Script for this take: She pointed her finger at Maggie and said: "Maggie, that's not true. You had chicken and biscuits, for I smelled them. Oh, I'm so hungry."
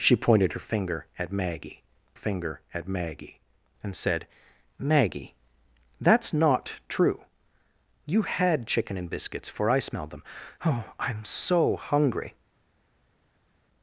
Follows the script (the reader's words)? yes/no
no